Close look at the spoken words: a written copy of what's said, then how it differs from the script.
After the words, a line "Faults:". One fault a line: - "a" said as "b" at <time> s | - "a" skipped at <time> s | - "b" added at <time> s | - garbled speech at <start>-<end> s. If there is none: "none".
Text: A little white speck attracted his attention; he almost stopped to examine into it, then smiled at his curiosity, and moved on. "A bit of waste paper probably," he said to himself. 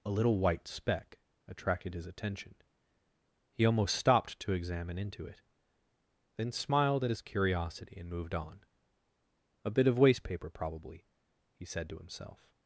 A little white speck attracted his attention; he almost stopped to examine into it, then smiled at his curiosity, and moved on. "A bit of waste paper probably," he said to himself.
Faults:
none